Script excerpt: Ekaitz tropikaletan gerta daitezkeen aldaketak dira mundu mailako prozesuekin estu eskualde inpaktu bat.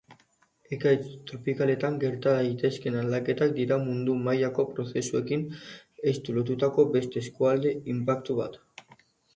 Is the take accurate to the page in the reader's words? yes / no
no